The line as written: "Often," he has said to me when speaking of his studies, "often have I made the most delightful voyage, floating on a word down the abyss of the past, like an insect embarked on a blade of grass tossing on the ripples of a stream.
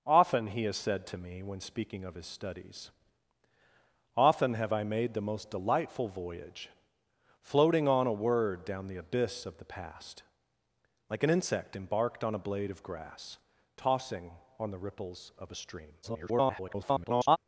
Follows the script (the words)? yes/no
no